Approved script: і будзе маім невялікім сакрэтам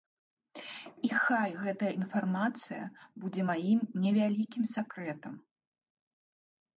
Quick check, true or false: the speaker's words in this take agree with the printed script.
false